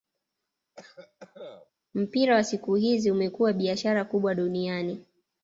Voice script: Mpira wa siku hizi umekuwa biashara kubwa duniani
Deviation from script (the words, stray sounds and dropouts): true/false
true